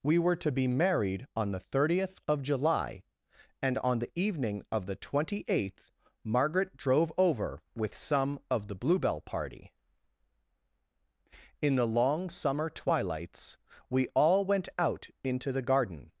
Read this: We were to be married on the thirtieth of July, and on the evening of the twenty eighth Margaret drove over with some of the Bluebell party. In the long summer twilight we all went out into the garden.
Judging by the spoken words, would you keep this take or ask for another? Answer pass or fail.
fail